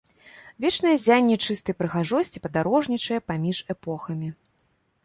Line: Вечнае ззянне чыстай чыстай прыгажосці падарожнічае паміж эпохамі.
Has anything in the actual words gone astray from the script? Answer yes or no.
yes